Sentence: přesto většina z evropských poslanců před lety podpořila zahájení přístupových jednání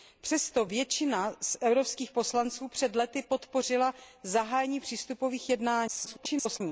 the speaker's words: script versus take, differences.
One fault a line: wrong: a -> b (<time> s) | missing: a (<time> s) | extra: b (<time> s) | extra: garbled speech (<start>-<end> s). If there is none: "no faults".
extra: garbled speech (5.9-6.6 s)